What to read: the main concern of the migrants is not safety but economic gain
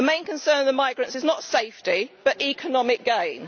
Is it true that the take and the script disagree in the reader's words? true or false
false